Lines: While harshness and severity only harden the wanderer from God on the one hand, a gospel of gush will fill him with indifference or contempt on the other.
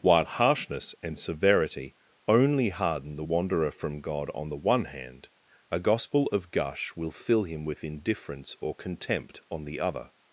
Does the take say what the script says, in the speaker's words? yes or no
yes